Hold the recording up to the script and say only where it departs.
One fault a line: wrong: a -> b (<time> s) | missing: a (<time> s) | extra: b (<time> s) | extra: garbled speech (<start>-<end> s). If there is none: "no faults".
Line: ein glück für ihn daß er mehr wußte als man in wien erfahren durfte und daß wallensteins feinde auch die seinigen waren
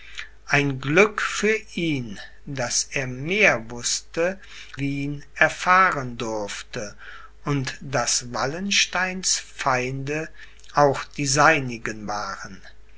missing: als man in (4.4 s)